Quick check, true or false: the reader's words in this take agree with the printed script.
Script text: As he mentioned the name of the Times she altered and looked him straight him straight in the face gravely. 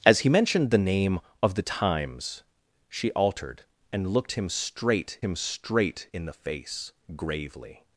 true